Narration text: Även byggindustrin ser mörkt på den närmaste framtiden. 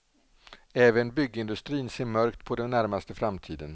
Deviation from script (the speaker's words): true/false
false